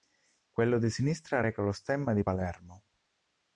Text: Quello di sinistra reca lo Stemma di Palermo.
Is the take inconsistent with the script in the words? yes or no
no